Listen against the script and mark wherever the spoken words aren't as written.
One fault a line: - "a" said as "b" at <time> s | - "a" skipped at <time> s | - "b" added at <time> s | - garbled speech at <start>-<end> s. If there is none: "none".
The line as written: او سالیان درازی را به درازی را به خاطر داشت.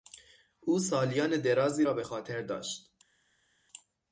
- "درازی را به" skipped at 2.0 s